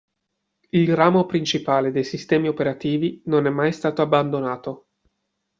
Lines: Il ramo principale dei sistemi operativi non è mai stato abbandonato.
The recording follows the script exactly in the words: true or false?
true